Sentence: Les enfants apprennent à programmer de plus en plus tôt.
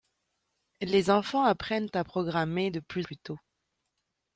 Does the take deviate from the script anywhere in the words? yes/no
yes